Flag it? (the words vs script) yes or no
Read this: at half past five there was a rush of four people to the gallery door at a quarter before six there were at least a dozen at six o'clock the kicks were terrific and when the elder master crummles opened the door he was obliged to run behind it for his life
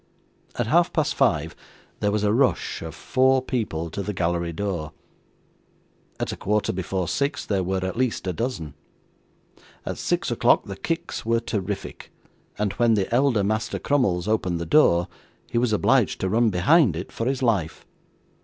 no